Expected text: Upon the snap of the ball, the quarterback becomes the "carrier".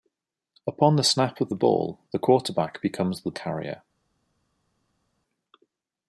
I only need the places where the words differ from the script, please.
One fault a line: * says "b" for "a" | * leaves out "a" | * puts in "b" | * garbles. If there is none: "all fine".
all fine